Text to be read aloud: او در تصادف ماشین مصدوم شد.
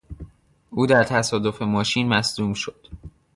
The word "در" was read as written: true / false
true